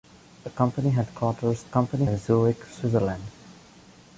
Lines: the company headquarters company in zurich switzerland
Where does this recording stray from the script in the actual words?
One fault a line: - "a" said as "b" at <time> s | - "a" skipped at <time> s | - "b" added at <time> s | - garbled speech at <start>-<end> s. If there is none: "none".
none